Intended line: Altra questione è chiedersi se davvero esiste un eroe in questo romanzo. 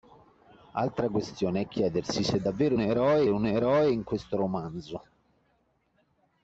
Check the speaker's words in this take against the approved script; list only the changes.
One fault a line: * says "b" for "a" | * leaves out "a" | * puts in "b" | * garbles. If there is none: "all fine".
* says "eroe" for "esiste"